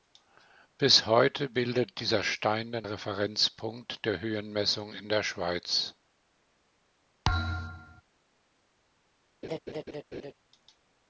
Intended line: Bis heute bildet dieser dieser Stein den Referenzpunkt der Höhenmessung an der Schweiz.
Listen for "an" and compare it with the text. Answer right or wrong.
wrong